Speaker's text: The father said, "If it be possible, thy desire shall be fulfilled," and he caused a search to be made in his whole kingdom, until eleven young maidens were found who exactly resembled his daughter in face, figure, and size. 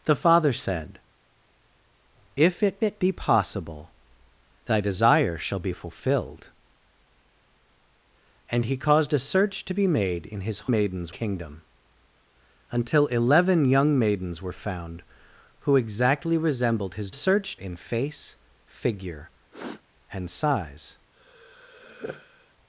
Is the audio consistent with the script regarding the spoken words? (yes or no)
no